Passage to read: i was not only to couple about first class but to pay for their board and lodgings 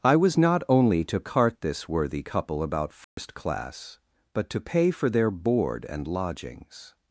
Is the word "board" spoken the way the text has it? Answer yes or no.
yes